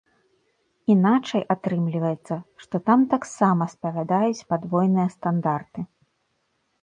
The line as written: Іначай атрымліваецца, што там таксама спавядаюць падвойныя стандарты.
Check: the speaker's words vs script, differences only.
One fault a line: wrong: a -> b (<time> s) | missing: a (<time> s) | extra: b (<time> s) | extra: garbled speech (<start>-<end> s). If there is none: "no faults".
no faults